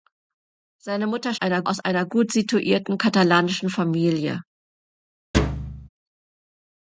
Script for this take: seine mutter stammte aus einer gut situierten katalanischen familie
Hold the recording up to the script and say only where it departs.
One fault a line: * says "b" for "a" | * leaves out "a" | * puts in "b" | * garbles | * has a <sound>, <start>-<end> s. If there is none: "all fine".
* says "einer" for "stammte"
* has a thud, 5.3-5.9 s